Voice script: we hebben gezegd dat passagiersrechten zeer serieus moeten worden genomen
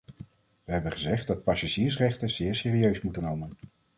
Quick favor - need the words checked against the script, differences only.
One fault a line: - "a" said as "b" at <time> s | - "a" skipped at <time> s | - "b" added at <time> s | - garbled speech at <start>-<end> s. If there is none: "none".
- "worden" skipped at 3.2 s